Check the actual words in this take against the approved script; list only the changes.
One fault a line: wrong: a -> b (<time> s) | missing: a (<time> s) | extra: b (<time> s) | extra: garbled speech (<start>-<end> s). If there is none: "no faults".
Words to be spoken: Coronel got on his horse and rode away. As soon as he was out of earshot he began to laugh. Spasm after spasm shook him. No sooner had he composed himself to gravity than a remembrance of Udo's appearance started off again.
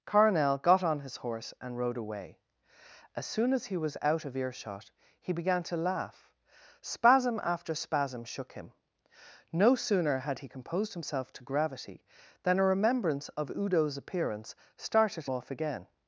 no faults